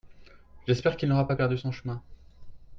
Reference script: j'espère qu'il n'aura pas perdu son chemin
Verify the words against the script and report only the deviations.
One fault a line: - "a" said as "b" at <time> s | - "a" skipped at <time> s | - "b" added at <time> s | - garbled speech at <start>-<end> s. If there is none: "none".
none